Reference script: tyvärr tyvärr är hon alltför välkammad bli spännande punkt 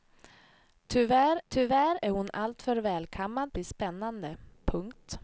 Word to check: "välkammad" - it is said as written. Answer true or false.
true